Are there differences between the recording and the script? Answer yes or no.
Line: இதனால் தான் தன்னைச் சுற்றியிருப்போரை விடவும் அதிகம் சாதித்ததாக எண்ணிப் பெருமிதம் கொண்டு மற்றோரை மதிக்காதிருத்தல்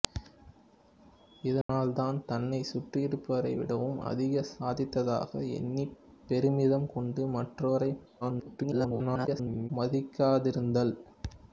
yes